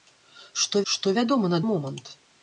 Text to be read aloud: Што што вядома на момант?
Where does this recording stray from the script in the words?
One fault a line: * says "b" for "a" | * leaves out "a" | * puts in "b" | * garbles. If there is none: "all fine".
all fine